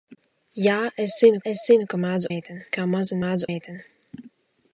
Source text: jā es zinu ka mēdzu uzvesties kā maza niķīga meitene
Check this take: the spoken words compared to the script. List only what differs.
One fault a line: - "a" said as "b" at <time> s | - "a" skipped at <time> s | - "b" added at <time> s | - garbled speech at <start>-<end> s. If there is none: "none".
- "es zinu" added at 1.5 s
- "uzvesties" said as "meitene" at 2.3 s
- "niķīga" said as "mēdzu" at 3.2 s